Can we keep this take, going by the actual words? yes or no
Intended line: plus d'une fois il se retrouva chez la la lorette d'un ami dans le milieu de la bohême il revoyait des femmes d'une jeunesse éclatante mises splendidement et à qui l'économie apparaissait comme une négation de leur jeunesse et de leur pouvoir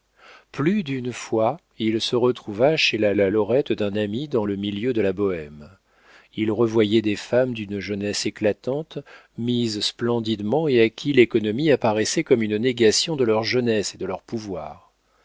yes